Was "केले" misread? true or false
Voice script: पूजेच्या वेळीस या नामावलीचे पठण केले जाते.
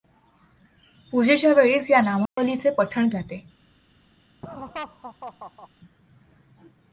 true